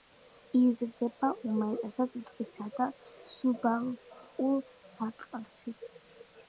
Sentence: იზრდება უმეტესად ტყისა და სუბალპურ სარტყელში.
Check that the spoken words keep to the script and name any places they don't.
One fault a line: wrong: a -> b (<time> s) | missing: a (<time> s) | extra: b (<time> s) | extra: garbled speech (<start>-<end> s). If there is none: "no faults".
no faults